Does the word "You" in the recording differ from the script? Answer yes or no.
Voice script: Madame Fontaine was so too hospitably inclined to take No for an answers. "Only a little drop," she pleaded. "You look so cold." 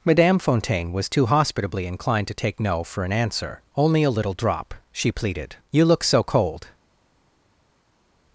no